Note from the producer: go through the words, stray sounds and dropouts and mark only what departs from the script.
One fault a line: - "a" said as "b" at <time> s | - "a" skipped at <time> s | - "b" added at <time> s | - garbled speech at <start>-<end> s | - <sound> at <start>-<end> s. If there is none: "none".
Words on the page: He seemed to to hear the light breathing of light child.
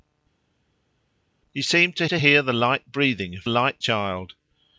none